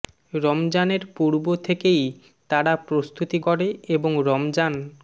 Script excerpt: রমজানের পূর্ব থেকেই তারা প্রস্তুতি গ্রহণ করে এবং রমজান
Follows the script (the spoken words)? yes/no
no